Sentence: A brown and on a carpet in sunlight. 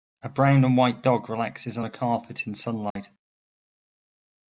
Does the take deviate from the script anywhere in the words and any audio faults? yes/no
yes